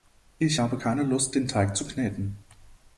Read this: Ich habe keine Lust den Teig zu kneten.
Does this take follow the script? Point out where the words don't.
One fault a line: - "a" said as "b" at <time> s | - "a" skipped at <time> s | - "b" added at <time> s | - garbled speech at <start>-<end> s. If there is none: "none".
none